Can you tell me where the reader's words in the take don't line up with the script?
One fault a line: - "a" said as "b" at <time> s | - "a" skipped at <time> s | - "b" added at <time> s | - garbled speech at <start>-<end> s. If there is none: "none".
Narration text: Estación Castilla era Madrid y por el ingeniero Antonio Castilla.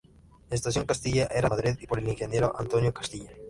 none